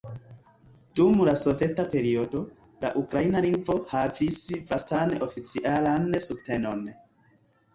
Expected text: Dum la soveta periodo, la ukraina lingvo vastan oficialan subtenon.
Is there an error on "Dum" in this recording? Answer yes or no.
no